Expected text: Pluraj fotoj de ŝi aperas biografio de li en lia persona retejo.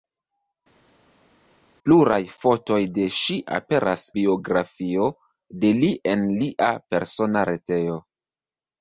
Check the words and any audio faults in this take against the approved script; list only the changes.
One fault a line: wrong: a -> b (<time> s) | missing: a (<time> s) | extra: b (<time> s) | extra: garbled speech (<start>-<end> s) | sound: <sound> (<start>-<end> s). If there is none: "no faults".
no faults